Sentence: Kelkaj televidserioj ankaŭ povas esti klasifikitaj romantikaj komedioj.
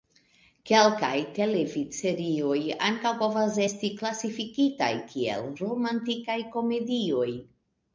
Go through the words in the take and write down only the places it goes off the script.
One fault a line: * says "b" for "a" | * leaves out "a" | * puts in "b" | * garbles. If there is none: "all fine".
* puts in "kiel"